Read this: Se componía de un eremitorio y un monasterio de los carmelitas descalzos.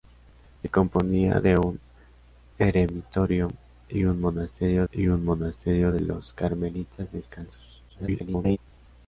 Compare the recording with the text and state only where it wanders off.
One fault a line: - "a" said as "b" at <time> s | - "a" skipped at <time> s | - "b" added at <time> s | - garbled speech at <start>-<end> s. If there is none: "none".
- "y un monasterio" added at 4.9 s
- garbled speech at 7.9-8.6 s